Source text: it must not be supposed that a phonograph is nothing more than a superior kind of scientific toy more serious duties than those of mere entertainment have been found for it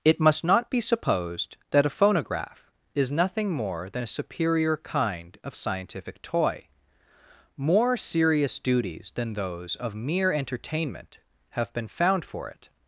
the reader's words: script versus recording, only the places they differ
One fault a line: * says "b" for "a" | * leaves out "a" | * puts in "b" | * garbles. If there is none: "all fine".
all fine